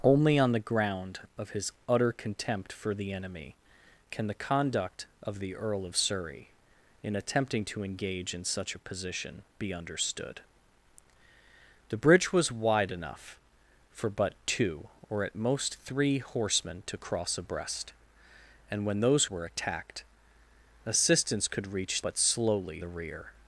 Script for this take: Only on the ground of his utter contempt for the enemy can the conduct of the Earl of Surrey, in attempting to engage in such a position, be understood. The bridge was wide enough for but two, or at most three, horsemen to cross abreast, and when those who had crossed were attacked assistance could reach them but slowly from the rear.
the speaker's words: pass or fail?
fail